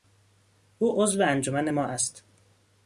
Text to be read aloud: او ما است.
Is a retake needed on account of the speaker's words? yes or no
yes